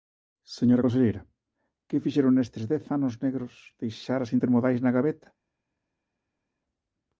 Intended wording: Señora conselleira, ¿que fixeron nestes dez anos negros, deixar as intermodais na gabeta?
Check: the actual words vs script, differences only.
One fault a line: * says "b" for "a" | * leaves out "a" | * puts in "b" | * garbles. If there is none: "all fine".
all fine